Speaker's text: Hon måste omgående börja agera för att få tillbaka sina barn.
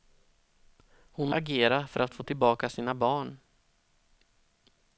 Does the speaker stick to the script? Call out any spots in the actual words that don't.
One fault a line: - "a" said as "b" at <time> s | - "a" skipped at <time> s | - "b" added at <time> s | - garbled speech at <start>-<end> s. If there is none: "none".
- "måste omgående börja" skipped at 1.3 s